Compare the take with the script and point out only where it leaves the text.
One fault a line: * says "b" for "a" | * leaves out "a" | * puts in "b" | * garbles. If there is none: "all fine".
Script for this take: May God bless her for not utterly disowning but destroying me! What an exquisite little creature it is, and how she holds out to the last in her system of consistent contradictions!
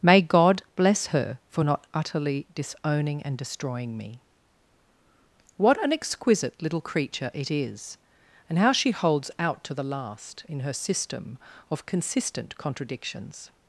* says "and" for "but"